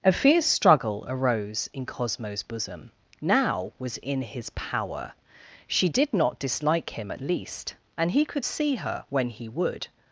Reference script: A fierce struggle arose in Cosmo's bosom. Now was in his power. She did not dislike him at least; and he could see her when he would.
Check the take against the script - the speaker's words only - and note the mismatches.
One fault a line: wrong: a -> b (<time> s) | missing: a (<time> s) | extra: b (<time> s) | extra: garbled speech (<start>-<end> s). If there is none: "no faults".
no faults